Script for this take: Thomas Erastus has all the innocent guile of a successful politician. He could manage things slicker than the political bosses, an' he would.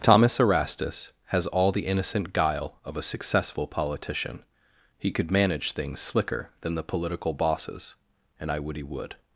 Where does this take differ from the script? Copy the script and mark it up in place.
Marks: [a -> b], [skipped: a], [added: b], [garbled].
Thomas Erastus has all the innocent guile of a successful politician. He could manage things slicker than the political bosses, [an' -> and I would] he would.